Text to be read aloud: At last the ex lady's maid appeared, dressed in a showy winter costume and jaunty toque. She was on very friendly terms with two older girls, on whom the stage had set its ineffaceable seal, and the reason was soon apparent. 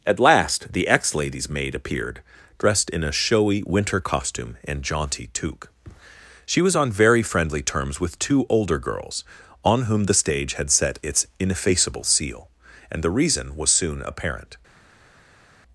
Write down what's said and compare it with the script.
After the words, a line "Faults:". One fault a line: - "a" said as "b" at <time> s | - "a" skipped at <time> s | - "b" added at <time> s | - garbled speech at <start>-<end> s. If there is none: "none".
At last the ex lady's maid appeared, dressed in a showy winter costume and jaunty toque. She was on very friendly terms with two older girls, on whom the stage had set its ineffaceable seal, and the reason was soon apparent.
Faults:
none